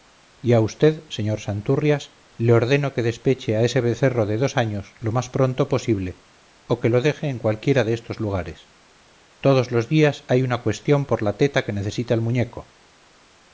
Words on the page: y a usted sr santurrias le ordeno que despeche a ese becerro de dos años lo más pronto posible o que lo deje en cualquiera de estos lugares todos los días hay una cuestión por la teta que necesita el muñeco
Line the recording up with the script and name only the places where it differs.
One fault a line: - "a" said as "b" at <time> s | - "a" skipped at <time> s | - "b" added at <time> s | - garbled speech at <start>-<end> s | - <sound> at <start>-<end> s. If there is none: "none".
none